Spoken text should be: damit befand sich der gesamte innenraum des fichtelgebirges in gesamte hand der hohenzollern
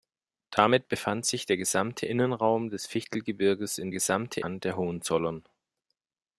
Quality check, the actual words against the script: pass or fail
pass